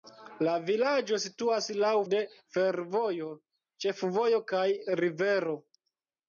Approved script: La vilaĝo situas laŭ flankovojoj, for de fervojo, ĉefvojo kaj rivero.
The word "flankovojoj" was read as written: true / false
false